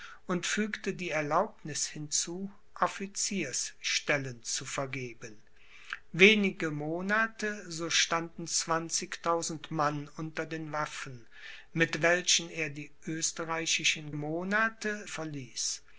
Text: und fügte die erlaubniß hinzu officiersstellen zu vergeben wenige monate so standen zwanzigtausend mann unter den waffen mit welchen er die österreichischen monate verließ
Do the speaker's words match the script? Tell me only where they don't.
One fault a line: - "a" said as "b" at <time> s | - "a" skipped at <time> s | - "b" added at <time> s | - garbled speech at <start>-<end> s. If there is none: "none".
none